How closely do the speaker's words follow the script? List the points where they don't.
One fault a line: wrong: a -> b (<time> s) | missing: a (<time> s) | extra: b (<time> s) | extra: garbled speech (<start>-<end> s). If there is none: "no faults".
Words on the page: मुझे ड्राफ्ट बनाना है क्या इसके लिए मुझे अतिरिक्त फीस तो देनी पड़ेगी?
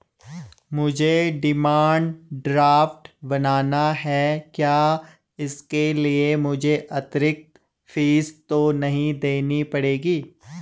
extra: डिमांड (1.4 s)
extra: नहीं (8.7 s)